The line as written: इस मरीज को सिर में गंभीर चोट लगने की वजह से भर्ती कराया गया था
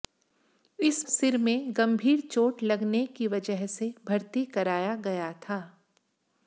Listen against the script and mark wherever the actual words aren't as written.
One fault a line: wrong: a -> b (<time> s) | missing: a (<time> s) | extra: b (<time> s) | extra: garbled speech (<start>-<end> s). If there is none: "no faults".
missing: मरीज को (1.1 s)